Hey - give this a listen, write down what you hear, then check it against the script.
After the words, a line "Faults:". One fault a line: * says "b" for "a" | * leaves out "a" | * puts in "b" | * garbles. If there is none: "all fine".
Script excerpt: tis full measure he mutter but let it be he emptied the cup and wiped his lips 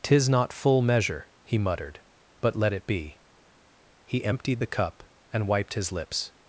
tis not full measure he muttered but let it be he emptied the cup and wiped his lips
Faults:
* puts in "not"
* says "muttered" for "mutter"